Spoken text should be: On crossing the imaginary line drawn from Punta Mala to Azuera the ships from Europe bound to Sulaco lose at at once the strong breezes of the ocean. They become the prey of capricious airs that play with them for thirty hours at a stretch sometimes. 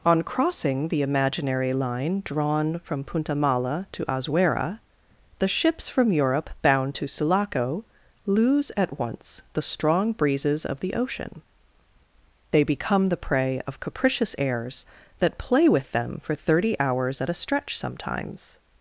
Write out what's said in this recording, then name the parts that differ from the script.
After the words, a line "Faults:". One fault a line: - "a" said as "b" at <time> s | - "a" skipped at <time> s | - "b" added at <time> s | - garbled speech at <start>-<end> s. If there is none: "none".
On crossing the imaginary line drawn from Punta Mala to Azuera the ships from Europe bound to Sulaco lose at once the strong breezes of the ocean. They become the prey of capricious airs that play with them for thirty hours at a stretch sometimes.
Faults:
- "at" skipped at 9.0 s